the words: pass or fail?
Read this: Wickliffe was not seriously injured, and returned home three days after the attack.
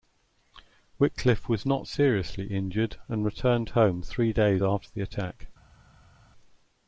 pass